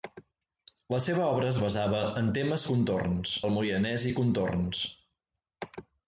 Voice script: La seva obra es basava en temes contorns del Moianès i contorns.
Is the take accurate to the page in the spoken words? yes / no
yes